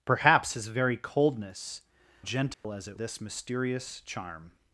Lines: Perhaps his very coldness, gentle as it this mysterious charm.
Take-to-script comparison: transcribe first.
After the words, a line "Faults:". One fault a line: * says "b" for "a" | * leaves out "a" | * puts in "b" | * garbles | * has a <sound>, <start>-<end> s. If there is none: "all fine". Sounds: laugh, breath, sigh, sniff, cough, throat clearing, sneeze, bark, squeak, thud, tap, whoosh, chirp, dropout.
Perhaps his very coldness, gentle as it this mysterious charm.
Faults:
* has a dropout, 2.5-2.6 s